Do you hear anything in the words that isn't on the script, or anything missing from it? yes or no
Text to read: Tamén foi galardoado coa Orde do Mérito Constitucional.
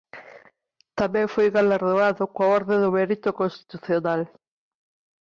no